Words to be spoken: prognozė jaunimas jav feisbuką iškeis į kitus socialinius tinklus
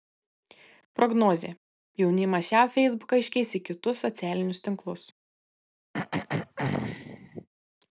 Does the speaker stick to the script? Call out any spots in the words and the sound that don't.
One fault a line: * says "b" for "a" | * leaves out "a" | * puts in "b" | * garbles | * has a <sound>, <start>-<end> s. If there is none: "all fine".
* has a throat clearing, 5.9-7.5 s